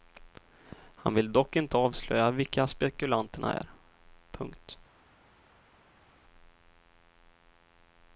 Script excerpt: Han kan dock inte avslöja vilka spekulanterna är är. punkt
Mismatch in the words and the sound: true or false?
true